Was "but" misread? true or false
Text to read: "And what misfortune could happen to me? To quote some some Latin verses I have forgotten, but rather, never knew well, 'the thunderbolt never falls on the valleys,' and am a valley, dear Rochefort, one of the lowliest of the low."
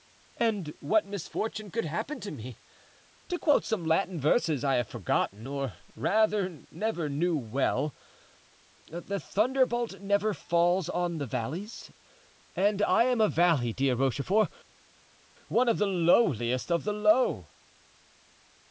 true